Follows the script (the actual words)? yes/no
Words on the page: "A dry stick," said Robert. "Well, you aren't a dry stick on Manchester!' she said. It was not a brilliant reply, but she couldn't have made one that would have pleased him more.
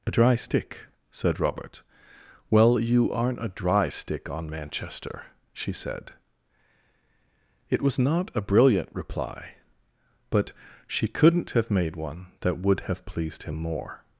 yes